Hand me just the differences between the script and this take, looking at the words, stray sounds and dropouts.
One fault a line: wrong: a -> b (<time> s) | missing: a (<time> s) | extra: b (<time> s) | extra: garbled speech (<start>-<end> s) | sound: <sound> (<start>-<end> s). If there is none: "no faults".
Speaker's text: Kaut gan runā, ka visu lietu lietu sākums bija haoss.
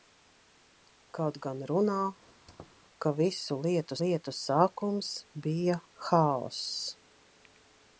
sound: squeak (2.2-2.8 s)